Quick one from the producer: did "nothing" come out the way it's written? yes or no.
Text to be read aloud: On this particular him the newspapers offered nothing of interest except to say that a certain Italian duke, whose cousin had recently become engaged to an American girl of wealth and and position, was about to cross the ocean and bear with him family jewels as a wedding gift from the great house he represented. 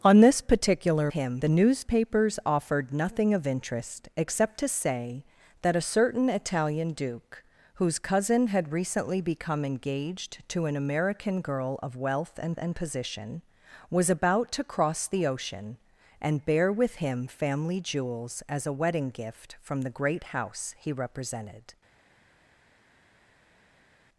yes